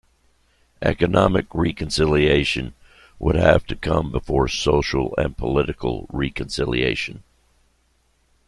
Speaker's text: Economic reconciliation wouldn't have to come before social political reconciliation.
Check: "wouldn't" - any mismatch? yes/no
yes